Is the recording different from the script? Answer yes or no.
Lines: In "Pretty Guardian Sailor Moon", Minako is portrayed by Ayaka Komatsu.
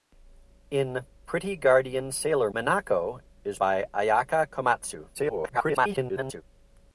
yes